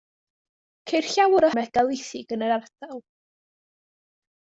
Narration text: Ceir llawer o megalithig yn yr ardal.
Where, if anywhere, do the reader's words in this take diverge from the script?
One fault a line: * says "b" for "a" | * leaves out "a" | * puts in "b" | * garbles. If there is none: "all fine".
all fine